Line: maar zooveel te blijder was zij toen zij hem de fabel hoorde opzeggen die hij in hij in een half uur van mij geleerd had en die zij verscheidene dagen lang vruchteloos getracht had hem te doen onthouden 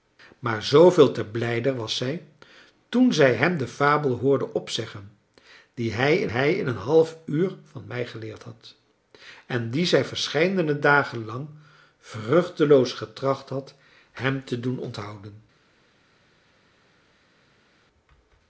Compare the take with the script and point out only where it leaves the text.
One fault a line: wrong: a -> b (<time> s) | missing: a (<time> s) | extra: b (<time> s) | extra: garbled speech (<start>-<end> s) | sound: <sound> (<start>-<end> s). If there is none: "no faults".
no faults